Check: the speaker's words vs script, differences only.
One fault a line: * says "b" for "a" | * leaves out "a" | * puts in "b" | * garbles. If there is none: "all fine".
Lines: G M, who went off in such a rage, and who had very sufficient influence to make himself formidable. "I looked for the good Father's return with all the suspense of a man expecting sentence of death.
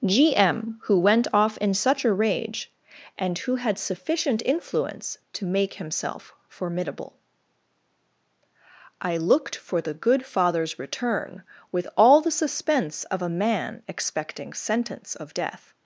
* leaves out "very"